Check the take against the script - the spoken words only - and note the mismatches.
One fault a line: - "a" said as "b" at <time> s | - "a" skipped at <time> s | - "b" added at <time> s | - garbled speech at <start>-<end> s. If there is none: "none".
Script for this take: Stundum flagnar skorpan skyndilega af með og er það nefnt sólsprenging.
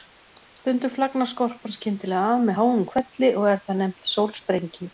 - "háum hvelli" added at 2.6 s